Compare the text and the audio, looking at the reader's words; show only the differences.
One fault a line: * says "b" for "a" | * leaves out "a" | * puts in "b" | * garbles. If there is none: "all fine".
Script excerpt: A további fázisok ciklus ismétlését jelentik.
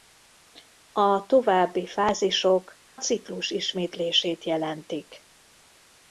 all fine